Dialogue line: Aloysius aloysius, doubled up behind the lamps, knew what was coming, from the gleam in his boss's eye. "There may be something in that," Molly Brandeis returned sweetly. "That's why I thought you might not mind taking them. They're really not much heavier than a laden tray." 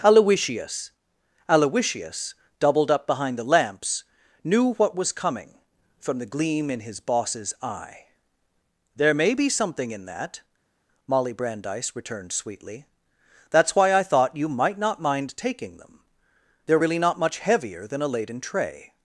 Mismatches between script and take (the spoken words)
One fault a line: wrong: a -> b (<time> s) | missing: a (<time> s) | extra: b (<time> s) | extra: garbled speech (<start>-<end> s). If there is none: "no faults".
no faults